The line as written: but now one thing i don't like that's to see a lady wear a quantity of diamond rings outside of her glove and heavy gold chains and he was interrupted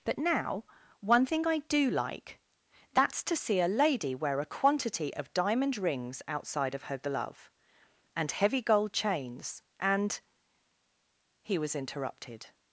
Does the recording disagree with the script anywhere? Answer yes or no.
yes